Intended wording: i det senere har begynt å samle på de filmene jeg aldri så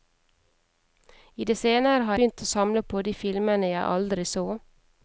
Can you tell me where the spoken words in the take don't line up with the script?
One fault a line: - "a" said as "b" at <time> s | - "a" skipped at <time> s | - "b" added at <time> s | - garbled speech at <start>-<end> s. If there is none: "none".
none